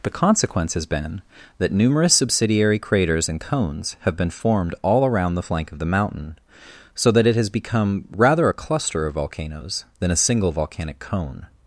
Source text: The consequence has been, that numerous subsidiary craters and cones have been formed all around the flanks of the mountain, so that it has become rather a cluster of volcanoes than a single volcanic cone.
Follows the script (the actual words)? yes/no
no